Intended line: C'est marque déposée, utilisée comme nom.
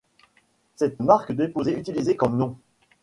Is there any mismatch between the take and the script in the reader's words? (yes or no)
no